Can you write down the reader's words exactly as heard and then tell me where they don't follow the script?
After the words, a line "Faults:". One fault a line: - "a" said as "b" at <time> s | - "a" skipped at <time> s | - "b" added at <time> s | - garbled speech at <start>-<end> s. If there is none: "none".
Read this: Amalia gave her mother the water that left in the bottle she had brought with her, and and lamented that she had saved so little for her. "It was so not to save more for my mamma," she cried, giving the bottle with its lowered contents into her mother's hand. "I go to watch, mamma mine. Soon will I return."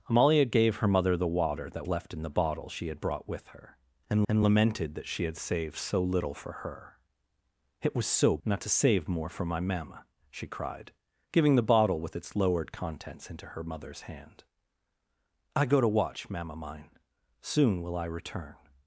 Amalia gave her mother the water that left in the bottle she had brought with her, and and lamented that she had saved so little for her. "It was so not to save more for my mamma," she cried, giving the bottle with its lowered contents into her mother's hand. "I go to watch, mamma mine. Soon will I return."
Faults:
none